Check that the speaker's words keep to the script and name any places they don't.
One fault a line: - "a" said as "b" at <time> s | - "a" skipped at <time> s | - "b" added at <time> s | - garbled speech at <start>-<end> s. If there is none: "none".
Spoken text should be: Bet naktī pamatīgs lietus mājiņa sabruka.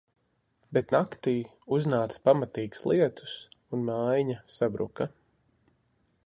- "uznāca" added at 1.8 s
- "un" added at 3.8 s